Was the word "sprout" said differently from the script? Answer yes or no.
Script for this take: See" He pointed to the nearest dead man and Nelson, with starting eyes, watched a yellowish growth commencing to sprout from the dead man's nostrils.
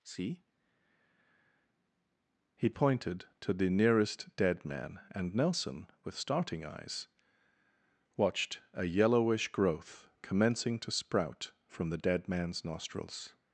no